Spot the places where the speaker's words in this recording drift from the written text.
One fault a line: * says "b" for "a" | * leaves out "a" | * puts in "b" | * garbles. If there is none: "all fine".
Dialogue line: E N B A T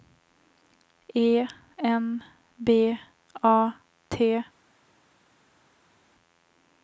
all fine